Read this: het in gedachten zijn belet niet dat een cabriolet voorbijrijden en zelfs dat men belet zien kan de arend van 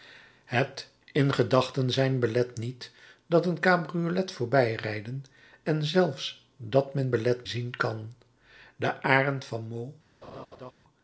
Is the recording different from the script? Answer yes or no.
no